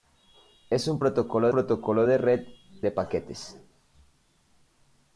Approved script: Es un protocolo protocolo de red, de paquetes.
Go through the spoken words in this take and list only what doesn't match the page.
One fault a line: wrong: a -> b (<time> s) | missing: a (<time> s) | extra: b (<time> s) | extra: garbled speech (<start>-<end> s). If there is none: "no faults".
no faults